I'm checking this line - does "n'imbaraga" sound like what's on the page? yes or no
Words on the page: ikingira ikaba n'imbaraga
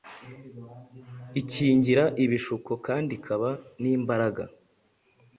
yes